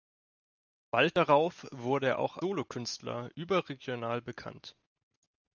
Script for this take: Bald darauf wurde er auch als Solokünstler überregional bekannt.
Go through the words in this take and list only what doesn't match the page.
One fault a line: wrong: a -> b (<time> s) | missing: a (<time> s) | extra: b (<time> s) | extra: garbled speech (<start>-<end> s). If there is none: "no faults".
missing: als (2.4 s)